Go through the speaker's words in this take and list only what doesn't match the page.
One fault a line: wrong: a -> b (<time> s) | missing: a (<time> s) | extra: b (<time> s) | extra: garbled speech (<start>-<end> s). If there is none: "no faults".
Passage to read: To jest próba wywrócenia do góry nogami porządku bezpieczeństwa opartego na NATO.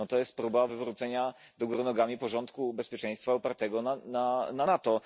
no faults